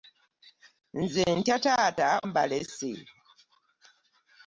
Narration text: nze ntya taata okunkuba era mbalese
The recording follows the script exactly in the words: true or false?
false